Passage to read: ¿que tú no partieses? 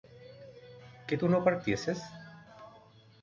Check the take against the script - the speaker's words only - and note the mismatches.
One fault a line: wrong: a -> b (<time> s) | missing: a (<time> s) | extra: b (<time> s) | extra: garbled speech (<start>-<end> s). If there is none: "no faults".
no faults